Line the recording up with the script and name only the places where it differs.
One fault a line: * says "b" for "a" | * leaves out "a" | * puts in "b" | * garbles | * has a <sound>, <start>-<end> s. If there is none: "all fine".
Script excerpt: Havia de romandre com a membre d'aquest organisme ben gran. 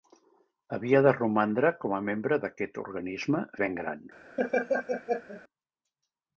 * has a laugh, 4.4-5.4 s